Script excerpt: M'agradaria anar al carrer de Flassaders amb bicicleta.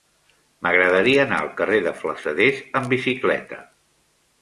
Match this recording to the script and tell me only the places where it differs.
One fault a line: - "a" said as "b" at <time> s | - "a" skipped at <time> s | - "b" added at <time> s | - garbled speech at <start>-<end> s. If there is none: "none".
none